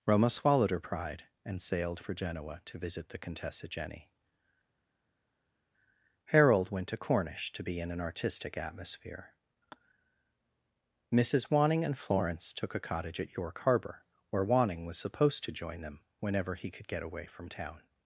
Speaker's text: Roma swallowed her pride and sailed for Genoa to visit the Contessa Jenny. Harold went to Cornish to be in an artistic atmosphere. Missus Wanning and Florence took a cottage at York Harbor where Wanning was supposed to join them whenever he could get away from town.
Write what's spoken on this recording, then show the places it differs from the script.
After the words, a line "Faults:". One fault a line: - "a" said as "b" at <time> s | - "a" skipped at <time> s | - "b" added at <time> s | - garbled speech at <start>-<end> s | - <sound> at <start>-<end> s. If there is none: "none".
Roma swallowed her pride and sailed for Genoa to visit the Contessa Jenny. Harold went to Cornish to be in an artistic atmosphere. Missus Wanning and Florence took a cottage at York Harbor where Wanning was supposed to join them whenever he could get away from town.
Faults:
none